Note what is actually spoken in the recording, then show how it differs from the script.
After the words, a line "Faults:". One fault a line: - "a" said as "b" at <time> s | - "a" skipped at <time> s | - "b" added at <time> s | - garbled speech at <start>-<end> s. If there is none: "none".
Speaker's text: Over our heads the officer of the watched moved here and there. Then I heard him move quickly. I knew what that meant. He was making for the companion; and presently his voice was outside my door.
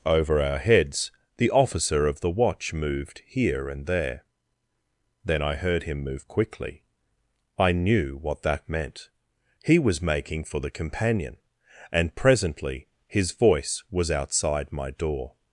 Over our heads the officer of the watch moved here and there. Then I heard him move quickly. I knew what that meant. He was making for the companion; and presently his voice was outside my door.
Faults:
- "watched" said as "watch" at 2.3 s